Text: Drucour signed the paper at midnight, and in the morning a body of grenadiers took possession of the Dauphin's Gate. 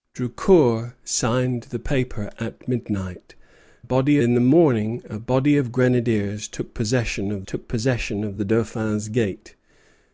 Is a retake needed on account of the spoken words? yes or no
yes